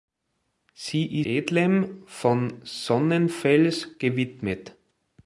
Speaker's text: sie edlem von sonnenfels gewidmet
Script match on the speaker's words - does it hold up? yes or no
yes